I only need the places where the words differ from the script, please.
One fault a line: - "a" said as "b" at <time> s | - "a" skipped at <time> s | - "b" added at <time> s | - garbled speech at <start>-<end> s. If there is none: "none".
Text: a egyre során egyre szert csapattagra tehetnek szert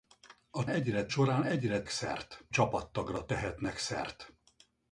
none